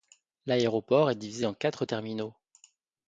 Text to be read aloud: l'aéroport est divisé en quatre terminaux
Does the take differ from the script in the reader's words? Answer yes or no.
no